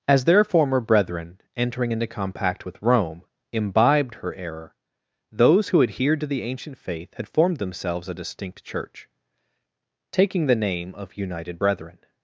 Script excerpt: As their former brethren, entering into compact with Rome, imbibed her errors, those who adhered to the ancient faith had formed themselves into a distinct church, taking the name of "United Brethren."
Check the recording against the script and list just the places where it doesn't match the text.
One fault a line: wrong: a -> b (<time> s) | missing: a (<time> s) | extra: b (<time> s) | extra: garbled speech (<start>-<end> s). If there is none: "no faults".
wrong: errors -> error (4.3 s)
missing: into (8.1 s)